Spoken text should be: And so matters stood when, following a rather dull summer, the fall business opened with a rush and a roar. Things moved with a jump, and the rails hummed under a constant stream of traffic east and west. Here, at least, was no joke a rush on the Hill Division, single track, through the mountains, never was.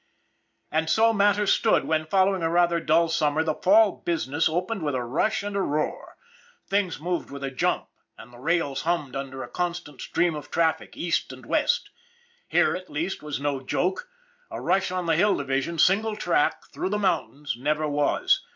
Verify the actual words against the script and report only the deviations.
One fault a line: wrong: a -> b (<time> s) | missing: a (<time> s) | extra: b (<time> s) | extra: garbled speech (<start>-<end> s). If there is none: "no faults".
no faults